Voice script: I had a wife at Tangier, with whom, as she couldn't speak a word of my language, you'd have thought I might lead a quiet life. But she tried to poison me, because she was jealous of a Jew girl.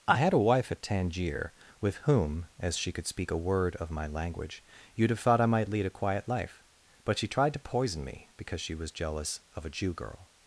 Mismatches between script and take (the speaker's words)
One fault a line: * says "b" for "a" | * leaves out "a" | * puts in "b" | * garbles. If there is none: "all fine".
* says "could" for "couldn't"